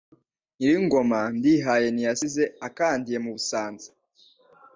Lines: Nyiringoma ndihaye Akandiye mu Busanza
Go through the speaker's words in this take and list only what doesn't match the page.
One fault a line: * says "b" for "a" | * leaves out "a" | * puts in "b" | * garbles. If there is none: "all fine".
* puts in "Ntiyasize"